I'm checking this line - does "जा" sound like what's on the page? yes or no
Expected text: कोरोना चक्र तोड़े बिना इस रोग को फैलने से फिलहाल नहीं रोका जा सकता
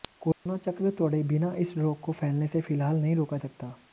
no